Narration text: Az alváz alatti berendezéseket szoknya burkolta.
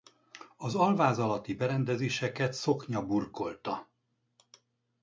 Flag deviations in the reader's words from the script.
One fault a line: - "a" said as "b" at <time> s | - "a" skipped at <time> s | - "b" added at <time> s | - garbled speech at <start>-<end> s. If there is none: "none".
none